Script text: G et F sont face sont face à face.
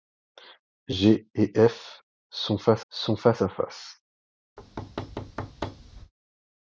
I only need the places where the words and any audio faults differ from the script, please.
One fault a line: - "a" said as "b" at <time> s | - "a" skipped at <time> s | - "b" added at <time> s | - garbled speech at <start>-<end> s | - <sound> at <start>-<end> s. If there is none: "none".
- thud at 4.6-6.1 s